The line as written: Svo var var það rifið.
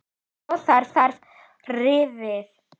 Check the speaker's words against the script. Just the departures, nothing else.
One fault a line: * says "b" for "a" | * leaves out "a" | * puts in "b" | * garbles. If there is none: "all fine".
all fine